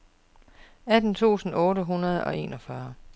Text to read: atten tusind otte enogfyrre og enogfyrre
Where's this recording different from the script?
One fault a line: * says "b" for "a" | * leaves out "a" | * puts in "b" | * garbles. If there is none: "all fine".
* says "hundrede" for "enogfyrre"